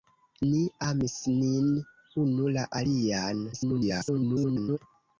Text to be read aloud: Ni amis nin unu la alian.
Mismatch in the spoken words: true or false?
true